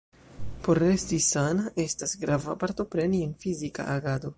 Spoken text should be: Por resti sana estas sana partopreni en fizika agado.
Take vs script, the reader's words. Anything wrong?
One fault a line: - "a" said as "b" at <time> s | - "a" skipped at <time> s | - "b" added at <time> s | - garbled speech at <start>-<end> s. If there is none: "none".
- "sana" said as "grava" at 2.2 s